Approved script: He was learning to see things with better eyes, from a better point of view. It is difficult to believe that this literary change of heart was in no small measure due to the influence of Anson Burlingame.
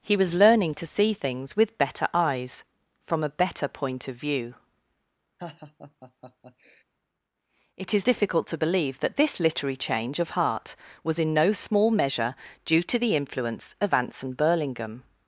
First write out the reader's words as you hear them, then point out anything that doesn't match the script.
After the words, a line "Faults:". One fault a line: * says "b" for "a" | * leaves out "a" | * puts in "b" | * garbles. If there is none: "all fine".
He was learning to see things with better eyes, from a better point of view. It is difficult to believe that this literary change of heart was in no small measure due to the influence of Anson Burlingame.
Faults:
all fine